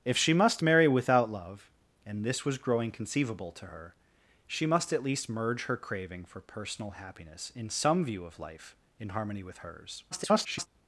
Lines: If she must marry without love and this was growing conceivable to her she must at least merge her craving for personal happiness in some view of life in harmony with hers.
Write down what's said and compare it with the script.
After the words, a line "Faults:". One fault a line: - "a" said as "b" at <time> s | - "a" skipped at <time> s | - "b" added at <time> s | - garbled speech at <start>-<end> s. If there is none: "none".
If she must marry without love and this was growing conceivable to her she must at least merge her craving for personal happiness in some view of life in harmony with hers. [garbled]
Faults:
- garbled speech at 10.1-10.7 s